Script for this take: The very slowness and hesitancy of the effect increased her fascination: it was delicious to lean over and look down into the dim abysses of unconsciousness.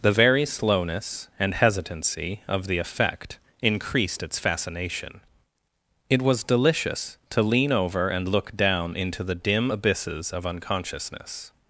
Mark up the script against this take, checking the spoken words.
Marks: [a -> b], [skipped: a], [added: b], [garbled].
The very slowness and hesitancy of the effect increased [her -> its] fascination: it was delicious to lean over and look down into the dim abysses of unconsciousness.